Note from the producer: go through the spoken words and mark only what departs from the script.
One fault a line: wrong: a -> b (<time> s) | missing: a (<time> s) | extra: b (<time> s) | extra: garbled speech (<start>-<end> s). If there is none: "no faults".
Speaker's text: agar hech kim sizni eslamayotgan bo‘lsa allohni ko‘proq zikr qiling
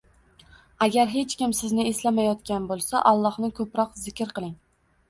no faults